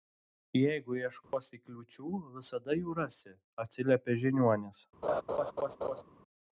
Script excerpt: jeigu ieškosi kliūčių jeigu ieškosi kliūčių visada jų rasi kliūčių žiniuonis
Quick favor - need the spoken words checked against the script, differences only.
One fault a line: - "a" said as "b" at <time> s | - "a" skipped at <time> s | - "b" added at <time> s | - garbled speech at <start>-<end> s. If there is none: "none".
- "jeigu ieškosi kliūčių" skipped at 2.1 s
- "kliūčių" said as "atsiliepė" at 3.7 s